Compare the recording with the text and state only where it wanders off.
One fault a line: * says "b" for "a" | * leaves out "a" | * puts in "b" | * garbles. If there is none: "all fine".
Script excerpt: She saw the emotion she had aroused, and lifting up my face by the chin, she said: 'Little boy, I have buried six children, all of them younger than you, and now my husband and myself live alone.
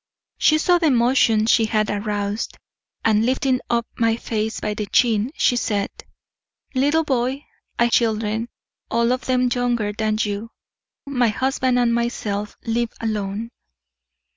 * leaves out "have buried six"
* leaves out "and now"